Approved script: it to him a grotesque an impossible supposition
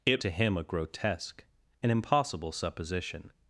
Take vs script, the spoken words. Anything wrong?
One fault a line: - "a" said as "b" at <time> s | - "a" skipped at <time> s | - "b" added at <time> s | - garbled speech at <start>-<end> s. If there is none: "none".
none